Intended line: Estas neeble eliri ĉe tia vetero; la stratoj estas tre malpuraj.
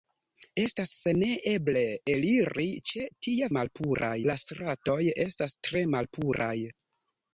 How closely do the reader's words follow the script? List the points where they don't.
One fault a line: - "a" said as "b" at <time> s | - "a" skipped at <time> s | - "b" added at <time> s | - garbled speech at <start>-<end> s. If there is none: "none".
- "vetero" said as "malpuraj" at 3.6 s